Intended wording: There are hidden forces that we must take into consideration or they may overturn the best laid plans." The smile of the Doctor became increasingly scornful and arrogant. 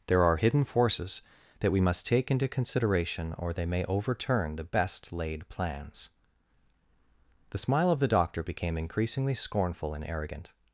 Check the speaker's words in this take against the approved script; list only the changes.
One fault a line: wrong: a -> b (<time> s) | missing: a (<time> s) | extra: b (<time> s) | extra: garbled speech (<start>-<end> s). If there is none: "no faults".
no faults